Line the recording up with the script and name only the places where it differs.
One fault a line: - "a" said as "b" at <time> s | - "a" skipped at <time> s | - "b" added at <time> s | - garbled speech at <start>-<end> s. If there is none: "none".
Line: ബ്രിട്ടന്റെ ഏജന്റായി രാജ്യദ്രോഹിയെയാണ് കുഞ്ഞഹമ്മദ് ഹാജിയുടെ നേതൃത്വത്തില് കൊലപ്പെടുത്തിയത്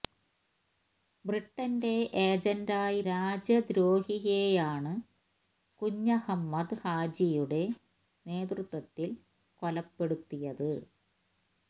none